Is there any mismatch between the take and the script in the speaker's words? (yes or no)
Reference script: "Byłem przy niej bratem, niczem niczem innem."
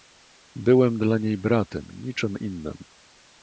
yes